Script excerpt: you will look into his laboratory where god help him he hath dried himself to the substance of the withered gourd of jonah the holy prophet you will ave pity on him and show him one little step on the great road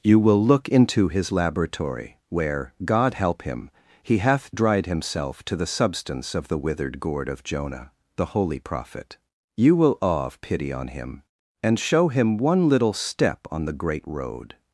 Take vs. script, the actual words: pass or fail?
fail